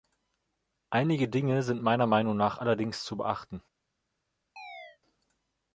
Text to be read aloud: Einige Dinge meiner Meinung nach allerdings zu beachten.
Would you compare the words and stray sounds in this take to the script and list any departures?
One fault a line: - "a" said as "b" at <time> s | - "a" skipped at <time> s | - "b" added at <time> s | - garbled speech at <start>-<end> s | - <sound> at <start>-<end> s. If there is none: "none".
- "sind" added at 1.6 s
- chirp at 4.6-5.0 s